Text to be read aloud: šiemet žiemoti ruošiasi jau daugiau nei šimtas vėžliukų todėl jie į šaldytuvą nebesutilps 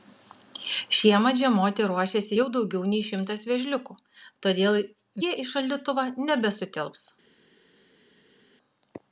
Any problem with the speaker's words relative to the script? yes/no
no